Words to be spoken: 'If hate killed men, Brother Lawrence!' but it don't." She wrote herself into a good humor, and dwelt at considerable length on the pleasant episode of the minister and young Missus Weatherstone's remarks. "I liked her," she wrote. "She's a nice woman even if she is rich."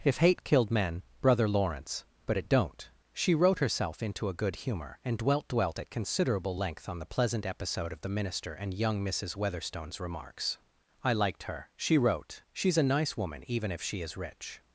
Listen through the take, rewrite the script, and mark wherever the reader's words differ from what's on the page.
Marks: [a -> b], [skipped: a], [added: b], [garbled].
'If hate killed men, Brother Lawrence!' but it don't." She wrote herself into a good humor, and dwelt [added: dwelt] at considerable length on the pleasant episode of the minister and young Missus Weatherstone's remarks. "I liked her," she wrote. "She's a nice woman even if she is rich."